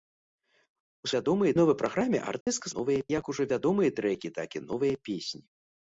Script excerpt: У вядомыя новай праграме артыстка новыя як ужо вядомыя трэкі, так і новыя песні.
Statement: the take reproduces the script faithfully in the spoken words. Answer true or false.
true